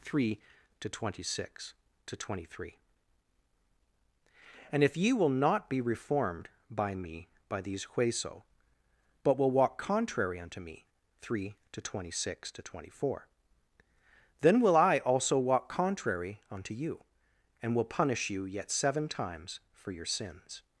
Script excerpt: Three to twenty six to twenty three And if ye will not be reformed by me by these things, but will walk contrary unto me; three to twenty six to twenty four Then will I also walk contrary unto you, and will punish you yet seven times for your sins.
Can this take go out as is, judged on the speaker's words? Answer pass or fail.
fail